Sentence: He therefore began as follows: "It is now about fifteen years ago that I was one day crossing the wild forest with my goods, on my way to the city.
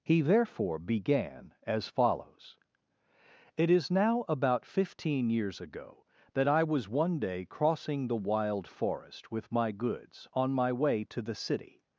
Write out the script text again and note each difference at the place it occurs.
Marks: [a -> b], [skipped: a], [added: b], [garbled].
He therefore began as follows: "It is now about fifteen years ago that I was one day crossing the wild forest with my goods, on my way to the city.